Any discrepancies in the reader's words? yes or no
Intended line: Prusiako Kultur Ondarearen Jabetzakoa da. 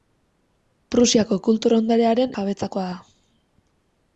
no